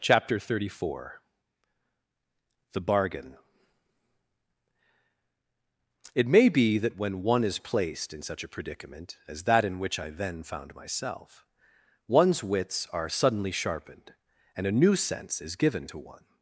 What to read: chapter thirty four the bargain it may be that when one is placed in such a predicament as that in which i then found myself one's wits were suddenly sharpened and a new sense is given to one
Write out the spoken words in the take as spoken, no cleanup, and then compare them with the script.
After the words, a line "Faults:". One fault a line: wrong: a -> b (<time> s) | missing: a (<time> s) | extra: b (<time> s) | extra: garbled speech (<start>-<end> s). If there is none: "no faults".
chapter thirty four the bargain it may be that when one is placed in such a predicament as that in which i then found myself one's wits are suddenly sharpened and a new sense is given to one
Faults:
wrong: were -> are (12.9 s)